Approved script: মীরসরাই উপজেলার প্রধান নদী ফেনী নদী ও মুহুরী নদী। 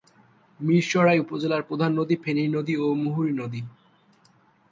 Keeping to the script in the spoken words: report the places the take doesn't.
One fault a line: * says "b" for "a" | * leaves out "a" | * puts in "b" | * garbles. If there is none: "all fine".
all fine